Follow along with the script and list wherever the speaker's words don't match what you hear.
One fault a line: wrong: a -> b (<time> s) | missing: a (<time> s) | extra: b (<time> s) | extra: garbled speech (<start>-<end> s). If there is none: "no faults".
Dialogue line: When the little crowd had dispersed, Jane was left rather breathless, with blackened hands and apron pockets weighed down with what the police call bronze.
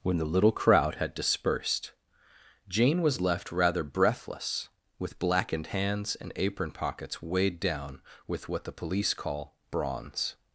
no faults